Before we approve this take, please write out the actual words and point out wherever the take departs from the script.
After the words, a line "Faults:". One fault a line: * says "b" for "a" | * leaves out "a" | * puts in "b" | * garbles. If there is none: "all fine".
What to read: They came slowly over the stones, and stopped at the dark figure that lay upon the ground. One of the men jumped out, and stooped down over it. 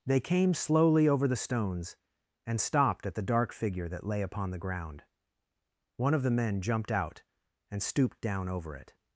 They came slowly over the stones, and stopped at the dark figure that lay upon the ground. One of the men jumped out, and stooped down over it.
Faults:
all fine